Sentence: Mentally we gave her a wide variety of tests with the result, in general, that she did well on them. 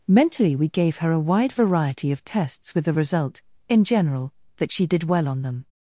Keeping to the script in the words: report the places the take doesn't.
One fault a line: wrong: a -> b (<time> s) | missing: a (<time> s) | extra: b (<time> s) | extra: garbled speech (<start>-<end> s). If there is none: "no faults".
no faults